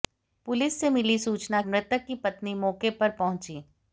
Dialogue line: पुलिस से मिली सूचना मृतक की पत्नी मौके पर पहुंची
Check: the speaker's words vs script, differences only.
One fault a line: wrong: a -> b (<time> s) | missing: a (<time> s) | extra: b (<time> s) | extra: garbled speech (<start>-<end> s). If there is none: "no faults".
no faults